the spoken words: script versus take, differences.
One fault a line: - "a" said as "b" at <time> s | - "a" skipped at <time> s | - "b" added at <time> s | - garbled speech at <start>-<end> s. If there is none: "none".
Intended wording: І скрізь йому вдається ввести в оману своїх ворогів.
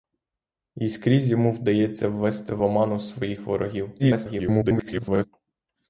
- garbled speech at 4.0-5.3 s